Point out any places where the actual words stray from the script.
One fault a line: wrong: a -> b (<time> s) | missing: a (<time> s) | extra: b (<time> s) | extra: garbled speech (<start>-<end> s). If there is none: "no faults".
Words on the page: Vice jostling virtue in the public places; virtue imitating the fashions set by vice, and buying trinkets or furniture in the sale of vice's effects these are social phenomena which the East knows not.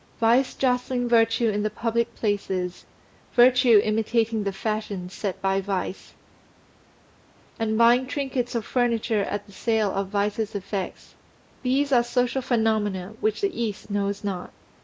wrong: in -> at (9.2 s)